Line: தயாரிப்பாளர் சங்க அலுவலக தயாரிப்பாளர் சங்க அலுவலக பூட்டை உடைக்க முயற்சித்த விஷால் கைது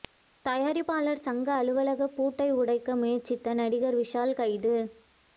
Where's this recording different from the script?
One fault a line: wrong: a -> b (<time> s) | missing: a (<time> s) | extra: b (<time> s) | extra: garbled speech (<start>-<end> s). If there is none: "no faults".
missing: தயாரிப்பாளர் சங்க அலுவலக (2.1 s)
extra: நடிகர் (3.5 s)